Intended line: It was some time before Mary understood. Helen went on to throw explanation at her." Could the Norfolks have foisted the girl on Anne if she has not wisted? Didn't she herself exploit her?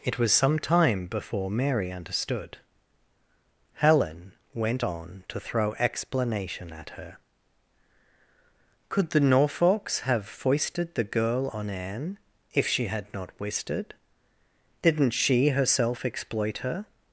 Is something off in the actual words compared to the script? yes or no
yes